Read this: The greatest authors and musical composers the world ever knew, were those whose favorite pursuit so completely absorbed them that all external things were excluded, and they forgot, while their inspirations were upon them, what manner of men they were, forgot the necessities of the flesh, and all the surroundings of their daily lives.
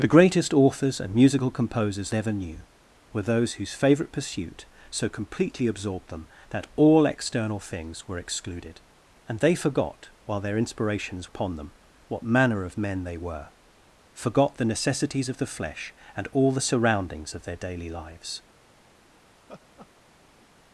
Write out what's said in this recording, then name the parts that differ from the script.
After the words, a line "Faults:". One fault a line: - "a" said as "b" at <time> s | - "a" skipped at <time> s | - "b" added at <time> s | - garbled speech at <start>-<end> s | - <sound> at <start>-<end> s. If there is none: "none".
The greatest authors and musical composers ever knew, were those whose favorite pursuit so completely absorbed them that all external things were excluded, and they forgot, while their inspirations upon them, what manner of men they were, forgot the necessities of the flesh, and all the surroundings of their daily lives.
Faults:
- "the world" skipped at 2.1 s
- "were" skipped at 11.3 s
- laugh at 19.4-20.5 s